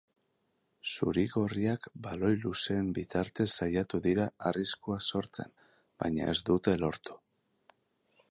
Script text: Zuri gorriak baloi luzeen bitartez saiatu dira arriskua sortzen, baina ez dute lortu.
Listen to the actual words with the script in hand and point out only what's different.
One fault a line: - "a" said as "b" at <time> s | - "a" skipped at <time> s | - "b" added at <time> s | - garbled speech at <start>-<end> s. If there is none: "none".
none